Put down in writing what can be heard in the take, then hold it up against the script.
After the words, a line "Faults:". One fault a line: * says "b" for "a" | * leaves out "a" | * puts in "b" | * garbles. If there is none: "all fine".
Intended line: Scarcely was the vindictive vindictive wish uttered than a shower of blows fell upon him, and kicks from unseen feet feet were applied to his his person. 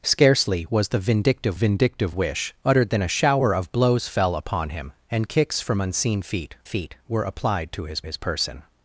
Scarcely was the vindictive vindictive wish uttered than a shower of blows fell upon him, and kicks from unseen feet feet were applied to his his person.
Faults:
all fine